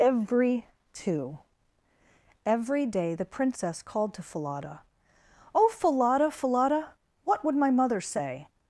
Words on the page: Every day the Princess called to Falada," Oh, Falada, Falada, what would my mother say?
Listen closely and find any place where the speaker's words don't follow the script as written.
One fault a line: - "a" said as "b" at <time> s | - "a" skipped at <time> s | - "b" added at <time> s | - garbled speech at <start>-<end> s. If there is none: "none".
- "two every" added at 0.9 s